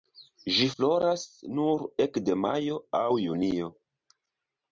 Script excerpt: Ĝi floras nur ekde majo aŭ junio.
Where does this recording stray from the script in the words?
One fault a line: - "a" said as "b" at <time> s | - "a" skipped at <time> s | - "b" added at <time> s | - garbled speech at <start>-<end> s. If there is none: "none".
none